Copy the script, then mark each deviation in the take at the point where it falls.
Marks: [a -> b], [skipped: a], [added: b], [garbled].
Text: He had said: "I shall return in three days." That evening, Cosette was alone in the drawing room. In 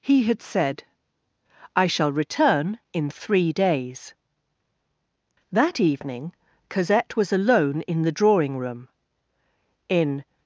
He had said: "I shall return in three days." That evening, Cosette was alone in the drawing room. In